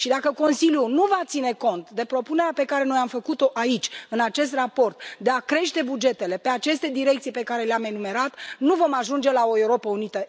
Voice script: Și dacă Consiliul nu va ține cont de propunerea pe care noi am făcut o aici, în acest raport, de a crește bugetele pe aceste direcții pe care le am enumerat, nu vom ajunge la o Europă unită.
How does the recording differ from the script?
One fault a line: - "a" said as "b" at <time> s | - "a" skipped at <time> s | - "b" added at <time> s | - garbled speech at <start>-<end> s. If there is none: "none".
none